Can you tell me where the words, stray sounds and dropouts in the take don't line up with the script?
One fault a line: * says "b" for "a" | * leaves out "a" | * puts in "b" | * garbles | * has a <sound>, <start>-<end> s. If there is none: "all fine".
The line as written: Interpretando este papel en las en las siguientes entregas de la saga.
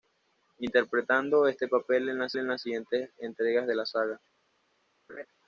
* has a laugh, 5.1-5.3 s